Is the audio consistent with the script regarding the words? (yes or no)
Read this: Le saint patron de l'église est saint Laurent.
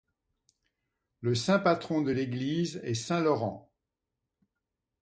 yes